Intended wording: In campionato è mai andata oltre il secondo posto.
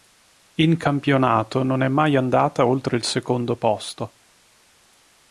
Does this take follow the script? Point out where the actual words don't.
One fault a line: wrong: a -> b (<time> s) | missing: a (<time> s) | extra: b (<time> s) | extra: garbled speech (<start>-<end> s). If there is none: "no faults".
extra: non (1.6 s)